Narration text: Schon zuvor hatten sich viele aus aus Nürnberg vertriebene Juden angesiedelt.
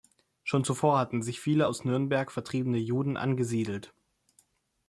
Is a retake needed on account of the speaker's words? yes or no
yes